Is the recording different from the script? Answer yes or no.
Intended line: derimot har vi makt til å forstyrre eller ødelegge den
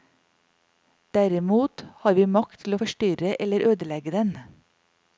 no